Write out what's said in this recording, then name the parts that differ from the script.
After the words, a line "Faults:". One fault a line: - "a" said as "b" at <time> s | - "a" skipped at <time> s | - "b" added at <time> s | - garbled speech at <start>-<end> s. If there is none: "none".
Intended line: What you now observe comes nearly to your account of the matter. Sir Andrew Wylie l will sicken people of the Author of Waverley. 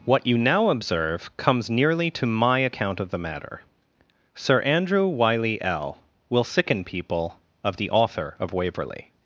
What you now observe comes nearly to my account of the matter. Sir Andrew Wylie l will sicken people of the Author of Waverley.
Faults:
- "your" said as "my" at 2.2 s